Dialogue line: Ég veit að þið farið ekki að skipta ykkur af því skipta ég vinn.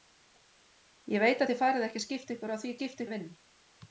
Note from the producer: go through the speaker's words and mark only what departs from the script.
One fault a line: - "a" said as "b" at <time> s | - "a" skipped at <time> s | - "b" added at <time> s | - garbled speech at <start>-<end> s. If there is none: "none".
none